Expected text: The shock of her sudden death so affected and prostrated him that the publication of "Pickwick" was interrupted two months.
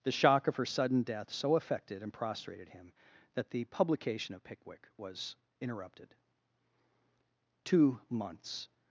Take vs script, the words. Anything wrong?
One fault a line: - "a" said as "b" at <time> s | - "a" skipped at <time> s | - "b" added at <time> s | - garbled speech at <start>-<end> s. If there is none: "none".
none